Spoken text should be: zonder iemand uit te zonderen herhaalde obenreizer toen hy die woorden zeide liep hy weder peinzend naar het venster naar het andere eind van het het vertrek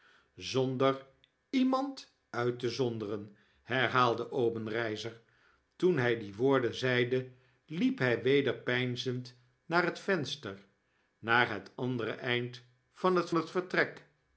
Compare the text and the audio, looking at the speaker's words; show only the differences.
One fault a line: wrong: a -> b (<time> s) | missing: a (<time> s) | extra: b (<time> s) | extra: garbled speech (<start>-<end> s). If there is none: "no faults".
no faults